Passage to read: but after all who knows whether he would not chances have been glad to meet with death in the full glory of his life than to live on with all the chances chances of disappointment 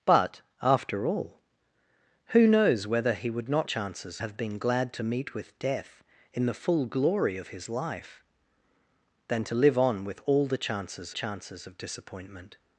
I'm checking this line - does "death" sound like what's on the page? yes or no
yes